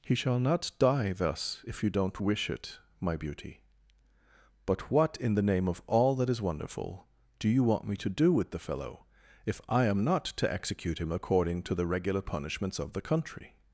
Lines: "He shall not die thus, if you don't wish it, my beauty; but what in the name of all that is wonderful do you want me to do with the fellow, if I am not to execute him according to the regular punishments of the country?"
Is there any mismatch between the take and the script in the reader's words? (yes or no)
no